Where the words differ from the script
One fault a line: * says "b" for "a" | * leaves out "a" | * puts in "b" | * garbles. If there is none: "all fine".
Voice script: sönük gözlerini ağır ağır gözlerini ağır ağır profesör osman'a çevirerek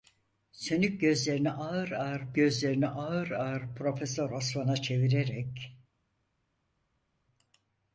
all fine